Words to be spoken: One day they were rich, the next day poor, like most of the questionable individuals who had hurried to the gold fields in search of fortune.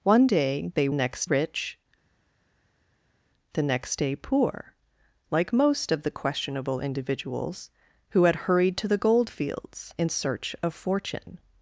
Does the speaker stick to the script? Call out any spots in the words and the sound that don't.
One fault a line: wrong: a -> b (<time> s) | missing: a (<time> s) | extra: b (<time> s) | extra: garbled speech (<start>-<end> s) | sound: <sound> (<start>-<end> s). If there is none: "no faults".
wrong: were -> next (0.9 s)